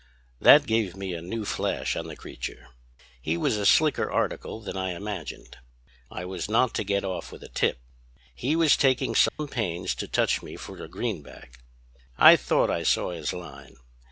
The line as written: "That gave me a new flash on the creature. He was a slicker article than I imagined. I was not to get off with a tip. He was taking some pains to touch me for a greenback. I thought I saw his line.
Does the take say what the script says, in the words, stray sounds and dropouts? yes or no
no